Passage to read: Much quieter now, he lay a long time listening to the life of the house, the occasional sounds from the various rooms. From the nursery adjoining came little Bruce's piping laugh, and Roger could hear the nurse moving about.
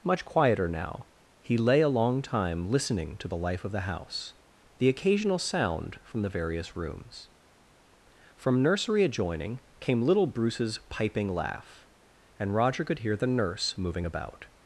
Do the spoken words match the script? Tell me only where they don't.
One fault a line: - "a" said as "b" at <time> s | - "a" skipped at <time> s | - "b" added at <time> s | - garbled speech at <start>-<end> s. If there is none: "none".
- "sounds" said as "sound" at 5.4 s
- "the" skipped at 8.6 s